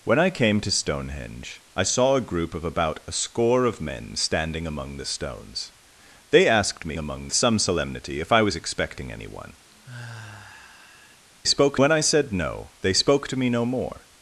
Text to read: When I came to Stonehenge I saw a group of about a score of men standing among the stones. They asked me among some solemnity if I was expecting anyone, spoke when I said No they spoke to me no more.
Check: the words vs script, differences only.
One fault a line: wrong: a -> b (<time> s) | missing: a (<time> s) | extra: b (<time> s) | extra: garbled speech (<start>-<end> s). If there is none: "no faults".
no faults